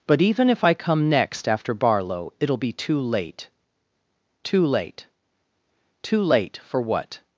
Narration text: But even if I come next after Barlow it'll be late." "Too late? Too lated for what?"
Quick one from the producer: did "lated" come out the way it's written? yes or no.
no